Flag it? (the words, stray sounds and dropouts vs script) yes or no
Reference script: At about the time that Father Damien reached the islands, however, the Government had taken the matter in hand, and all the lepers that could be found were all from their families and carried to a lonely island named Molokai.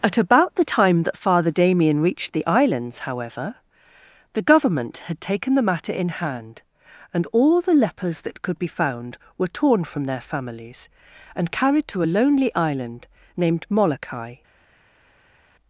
yes